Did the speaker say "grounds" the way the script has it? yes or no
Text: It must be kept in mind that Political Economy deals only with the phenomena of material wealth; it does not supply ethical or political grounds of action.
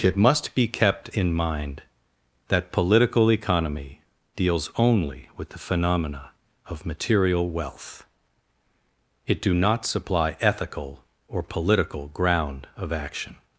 no